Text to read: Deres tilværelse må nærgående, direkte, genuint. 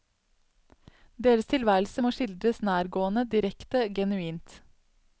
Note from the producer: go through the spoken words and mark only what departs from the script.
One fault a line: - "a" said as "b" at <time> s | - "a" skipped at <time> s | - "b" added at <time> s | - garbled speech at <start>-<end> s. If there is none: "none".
- "skildres" added at 2.2 s